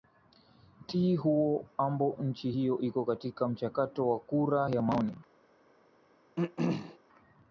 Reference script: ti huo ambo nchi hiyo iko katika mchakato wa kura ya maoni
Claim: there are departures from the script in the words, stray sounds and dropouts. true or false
true